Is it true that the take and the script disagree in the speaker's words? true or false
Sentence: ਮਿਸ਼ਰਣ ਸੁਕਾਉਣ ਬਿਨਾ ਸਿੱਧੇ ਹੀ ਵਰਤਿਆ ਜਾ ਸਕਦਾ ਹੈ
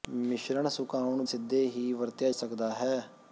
true